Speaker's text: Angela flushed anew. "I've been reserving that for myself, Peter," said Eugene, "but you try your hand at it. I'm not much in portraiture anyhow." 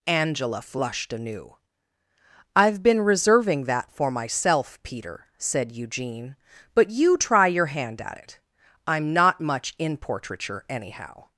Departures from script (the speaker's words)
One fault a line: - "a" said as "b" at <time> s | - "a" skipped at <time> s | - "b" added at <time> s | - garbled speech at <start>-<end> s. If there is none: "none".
none